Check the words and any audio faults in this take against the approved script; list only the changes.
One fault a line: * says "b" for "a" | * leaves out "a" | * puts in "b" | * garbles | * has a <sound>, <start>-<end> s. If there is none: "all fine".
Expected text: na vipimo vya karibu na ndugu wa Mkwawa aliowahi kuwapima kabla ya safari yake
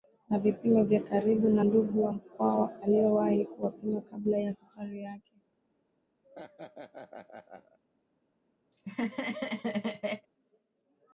* has a laugh, 6.2-7.8 s
* has a laugh, 8.7-10.3 s